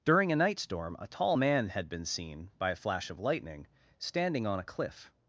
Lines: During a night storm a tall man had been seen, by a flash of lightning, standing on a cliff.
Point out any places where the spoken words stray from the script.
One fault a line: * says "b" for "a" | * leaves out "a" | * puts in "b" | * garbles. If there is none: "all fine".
all fine